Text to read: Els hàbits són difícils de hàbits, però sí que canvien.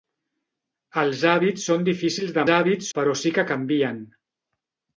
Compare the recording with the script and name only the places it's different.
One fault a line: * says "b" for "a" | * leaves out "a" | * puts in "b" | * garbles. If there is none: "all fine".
all fine